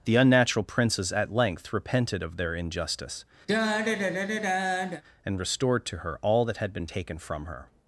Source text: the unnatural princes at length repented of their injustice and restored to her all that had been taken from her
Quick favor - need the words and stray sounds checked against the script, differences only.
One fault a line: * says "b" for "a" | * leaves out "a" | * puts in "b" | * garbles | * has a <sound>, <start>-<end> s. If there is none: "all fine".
* has a sigh, 3.5-5.0 s